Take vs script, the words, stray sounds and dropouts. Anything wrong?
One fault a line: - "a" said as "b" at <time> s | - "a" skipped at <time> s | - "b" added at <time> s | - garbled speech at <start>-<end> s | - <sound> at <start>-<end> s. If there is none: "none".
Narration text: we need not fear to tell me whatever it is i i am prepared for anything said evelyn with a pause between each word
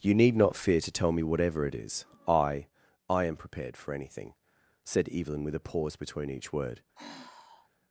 - "we" said as "you" at 0.0 s
- sigh at 6.9-7.7 s